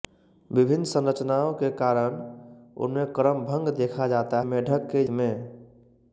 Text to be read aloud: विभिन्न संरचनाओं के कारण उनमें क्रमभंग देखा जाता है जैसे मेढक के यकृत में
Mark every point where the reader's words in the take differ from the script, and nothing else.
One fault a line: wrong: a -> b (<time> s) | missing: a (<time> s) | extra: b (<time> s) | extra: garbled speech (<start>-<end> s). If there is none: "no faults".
missing: है जैसे (4.4 s)
missing: यकृत (5.0 s)